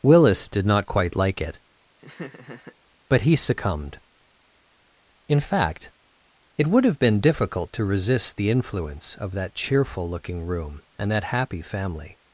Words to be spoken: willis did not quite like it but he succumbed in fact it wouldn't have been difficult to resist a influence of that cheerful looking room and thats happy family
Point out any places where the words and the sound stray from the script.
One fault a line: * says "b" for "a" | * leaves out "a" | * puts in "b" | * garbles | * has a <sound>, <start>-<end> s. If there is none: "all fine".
* has a laugh, 2.0-2.8 s
* says "would" for "wouldn't"
* says "the" for "a"
* says "that" for "thats"